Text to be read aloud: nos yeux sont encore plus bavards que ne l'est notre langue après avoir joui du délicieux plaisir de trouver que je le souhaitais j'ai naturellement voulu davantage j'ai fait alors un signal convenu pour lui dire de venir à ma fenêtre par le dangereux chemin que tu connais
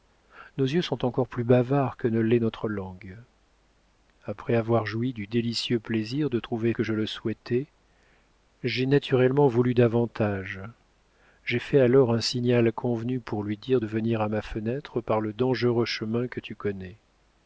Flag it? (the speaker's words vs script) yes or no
no